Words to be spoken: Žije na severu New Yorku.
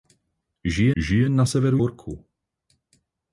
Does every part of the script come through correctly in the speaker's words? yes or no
no